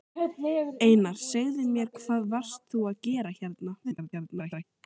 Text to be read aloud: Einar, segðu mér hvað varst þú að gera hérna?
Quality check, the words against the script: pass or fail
fail